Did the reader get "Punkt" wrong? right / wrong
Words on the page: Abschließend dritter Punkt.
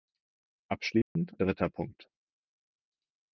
right